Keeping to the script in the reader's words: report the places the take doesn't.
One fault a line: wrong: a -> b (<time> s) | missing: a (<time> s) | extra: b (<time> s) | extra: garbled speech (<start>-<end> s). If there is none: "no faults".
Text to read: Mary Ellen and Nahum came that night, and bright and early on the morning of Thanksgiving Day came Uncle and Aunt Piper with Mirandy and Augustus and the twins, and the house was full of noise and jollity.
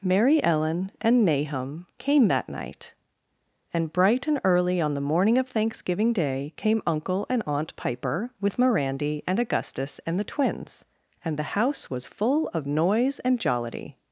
no faults